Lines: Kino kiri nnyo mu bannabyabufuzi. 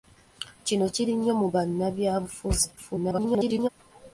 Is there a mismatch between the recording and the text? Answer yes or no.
yes